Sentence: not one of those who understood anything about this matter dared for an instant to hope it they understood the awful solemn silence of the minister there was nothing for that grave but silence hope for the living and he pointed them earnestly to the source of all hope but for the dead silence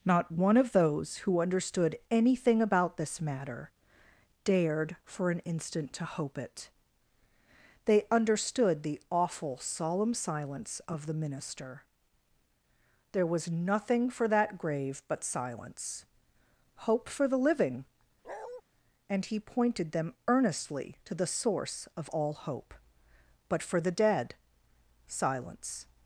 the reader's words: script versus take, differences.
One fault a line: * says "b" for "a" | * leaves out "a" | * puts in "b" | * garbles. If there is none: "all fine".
all fine